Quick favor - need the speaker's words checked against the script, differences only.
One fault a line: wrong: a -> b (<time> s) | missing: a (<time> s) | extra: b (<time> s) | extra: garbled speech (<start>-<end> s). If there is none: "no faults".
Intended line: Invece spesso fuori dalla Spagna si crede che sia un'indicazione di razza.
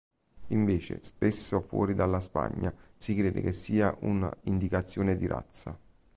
no faults